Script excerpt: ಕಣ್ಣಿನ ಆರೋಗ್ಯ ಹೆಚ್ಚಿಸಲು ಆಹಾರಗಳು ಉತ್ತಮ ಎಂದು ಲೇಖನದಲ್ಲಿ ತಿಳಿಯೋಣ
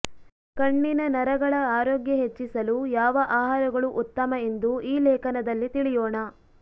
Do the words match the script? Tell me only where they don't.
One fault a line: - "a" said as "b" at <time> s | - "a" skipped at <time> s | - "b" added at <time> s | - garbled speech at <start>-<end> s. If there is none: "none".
- "ನರಗಳ" added at 1.1 s
- "ಯಾವ" added at 3.0 s
- "ಈ" added at 4.9 s